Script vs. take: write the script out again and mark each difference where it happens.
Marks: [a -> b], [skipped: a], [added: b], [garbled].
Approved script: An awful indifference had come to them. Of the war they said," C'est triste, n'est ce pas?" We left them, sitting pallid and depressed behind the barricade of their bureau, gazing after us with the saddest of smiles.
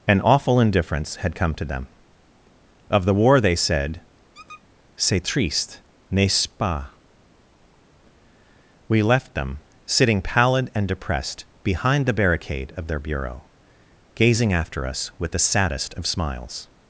An awful indifference had come to them. Of the war they said," C'est triste, n'est ce pas?" We left them, sitting pallid and depressed behind the barricade of their bureau, gazing after us with the saddest of smiles.